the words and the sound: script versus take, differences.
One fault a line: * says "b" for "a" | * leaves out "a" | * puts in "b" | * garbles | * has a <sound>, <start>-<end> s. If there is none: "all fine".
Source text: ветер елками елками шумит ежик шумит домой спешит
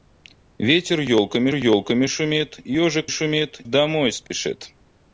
* has a dropout, 4.3-4.3 s